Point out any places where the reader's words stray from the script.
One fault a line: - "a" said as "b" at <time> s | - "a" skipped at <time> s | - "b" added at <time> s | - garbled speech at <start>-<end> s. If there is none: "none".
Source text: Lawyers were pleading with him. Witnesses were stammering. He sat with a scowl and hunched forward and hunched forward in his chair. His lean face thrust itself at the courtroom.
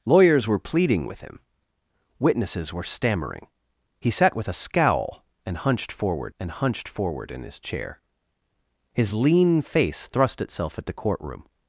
none